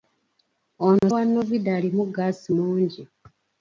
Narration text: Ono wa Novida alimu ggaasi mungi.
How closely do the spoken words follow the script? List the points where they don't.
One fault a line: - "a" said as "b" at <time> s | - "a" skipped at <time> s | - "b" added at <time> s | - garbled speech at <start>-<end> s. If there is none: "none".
none